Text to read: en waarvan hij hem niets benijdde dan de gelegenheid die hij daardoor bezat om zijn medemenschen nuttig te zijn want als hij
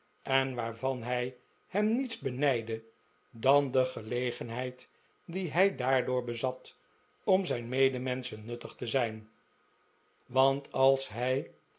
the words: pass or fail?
pass